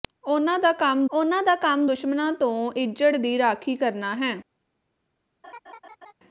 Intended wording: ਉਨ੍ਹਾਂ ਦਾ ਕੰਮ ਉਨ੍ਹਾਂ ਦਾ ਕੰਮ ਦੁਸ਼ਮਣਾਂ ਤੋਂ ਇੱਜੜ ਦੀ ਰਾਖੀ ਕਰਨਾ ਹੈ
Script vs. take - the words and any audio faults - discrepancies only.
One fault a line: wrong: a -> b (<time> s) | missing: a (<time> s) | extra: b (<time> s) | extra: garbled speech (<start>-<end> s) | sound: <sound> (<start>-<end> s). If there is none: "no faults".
sound: laugh (5.4-6.1 s)